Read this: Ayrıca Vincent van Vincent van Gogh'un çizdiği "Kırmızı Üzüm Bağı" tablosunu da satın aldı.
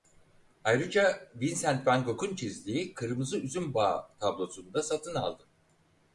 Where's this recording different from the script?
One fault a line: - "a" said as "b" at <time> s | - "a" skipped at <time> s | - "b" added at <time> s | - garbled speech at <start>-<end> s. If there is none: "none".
- "Vincent van" skipped at 2.0 s